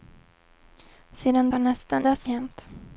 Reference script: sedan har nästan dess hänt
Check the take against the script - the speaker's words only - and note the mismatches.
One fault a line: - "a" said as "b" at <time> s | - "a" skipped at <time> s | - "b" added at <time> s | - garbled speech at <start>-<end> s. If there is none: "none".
none